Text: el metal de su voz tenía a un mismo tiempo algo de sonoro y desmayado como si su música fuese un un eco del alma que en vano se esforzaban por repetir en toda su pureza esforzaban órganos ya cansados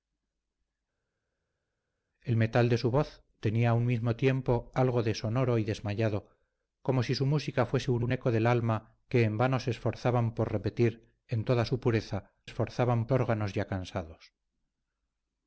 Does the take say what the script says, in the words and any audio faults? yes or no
yes